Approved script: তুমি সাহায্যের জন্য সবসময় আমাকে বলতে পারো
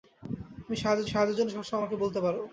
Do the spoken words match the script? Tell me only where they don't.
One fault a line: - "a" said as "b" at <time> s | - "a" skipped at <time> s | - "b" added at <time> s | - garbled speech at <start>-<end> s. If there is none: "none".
- "সাহায্যের" added at 1.1 s